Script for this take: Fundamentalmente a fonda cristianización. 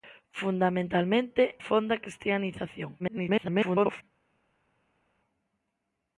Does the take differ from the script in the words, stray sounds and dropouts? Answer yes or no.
yes